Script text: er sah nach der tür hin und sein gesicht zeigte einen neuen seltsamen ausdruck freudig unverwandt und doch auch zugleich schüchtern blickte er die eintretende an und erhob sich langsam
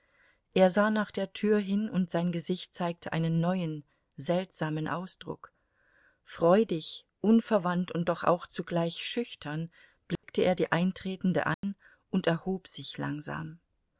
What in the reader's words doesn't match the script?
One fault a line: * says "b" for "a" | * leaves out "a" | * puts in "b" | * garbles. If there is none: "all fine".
all fine